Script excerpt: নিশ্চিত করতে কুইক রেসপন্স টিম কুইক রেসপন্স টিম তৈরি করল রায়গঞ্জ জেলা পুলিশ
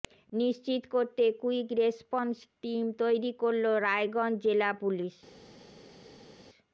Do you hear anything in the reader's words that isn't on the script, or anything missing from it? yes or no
yes